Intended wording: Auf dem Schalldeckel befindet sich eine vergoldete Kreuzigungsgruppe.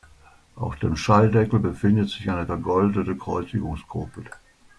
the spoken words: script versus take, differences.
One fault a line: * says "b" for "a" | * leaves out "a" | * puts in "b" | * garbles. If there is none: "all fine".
all fine